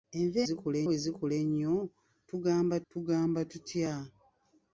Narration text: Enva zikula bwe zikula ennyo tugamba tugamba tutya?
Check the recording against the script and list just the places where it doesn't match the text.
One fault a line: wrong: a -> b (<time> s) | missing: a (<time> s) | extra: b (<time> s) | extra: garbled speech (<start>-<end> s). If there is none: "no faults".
no faults